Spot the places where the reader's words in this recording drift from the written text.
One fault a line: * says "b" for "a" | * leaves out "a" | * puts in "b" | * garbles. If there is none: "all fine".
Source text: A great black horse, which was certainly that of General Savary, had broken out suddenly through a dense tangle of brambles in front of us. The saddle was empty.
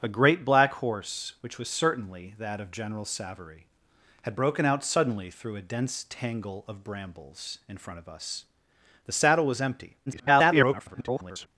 * garbles